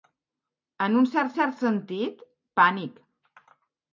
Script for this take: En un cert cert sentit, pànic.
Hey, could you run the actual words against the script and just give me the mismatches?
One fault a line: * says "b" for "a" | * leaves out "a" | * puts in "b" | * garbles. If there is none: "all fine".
all fine